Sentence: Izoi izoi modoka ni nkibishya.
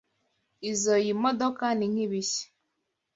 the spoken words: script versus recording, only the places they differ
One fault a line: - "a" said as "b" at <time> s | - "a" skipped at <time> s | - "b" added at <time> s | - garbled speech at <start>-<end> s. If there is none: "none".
- "izoi" skipped at 1.1 s